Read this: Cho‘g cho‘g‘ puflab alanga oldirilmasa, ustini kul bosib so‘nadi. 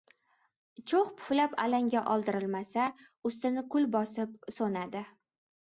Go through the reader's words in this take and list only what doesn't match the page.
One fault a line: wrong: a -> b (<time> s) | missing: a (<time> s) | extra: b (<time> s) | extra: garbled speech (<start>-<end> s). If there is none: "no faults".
missing: cho‘g (1.1 s)